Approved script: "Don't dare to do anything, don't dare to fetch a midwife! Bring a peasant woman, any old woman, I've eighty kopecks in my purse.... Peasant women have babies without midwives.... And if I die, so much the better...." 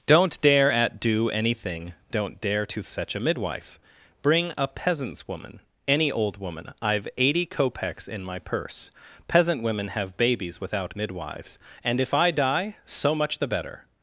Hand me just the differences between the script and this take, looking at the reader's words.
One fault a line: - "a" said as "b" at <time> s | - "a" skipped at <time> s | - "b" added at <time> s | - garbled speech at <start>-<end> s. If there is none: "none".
- "to" said as "at" at 0.7 s
- "peasant" said as "peasants" at 4.7 s